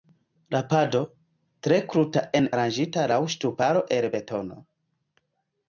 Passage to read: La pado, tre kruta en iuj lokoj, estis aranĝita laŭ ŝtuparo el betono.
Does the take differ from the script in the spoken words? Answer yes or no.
yes